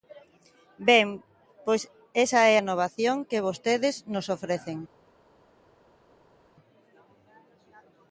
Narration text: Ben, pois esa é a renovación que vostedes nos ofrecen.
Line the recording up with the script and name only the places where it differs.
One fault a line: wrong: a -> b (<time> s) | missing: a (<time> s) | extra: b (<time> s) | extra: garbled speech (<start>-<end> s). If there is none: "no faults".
missing: a (2.6 s)